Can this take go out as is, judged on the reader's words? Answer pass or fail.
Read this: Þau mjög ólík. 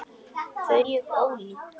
pass